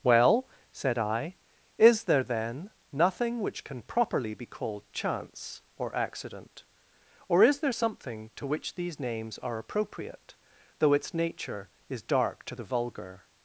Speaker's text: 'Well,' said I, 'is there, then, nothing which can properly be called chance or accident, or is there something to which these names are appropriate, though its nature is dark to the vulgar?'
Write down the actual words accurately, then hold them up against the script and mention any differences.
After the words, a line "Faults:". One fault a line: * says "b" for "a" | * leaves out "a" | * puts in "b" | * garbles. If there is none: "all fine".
'Well,' said I, 'is there, then, nothing which can properly be called chance or accident, or is there something to which these names are appropriate, though its nature is dark to the vulgar?'
Faults:
all fine